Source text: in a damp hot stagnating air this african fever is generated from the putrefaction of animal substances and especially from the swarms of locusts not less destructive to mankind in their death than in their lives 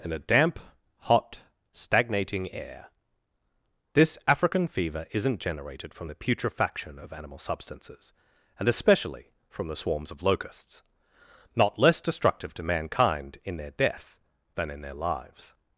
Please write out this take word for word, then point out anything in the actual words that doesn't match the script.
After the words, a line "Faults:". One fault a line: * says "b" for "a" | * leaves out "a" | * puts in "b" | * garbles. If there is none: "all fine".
in a damp hot stagnating air this african fever isn't generated from the putrefaction of animal substances and especially from the swarms of locusts not less destructive to mankind in their death than in their lives
Faults:
* says "isn't" for "is"